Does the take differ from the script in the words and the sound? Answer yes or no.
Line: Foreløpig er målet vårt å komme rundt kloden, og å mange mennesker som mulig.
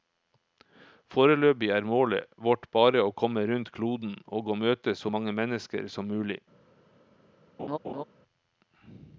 yes